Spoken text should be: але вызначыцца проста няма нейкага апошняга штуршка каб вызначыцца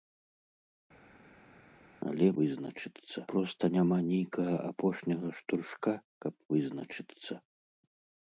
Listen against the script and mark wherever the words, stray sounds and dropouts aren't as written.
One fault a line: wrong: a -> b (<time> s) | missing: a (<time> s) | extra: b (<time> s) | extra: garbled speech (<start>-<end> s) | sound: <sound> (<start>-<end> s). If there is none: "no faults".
no faults